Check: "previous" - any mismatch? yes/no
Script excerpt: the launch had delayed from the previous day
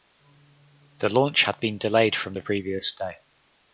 no